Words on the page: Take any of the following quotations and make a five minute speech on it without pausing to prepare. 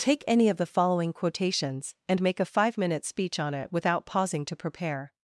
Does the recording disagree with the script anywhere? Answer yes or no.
no